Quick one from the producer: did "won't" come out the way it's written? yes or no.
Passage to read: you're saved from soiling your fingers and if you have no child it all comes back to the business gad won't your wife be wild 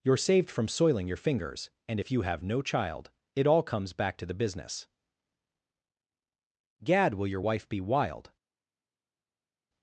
no